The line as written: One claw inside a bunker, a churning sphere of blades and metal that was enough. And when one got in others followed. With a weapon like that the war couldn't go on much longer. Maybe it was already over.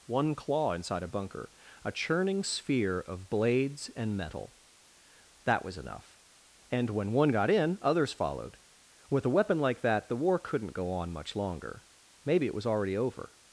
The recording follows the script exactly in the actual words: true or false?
true